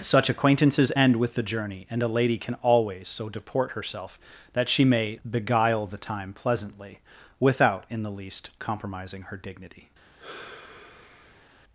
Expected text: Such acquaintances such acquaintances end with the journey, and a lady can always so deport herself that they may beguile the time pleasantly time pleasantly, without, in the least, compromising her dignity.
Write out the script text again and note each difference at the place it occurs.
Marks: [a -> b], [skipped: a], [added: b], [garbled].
Such acquaintances [skipped: such acquaintances] end with the journey, and a lady can always so deport herself that [they -> she] may beguile the time pleasantly [skipped: time pleasantly,] without, in the least, compromising her dignity.